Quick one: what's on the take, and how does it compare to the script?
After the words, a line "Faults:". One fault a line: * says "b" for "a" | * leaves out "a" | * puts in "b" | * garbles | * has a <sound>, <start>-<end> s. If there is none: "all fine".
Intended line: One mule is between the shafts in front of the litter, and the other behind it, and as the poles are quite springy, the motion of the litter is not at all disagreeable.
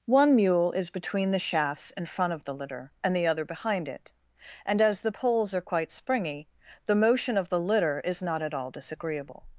One mule is between the shafts in front of the litter, and the other behind it, and as the poles are quite springy, the motion of the litter is not at all disagreeable.
Faults:
all fine